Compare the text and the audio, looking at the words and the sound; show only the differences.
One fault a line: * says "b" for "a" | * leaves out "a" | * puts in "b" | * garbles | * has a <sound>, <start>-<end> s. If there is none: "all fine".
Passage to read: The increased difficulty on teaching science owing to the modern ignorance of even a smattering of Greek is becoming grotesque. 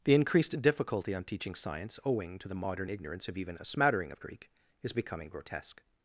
all fine